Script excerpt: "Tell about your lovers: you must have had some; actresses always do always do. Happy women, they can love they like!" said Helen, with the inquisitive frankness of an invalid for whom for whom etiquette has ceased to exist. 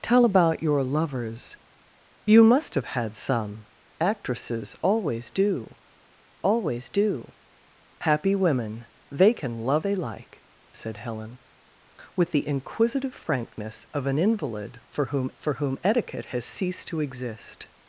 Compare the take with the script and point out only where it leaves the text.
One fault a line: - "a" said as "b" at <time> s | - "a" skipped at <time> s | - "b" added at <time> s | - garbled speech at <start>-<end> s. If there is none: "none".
none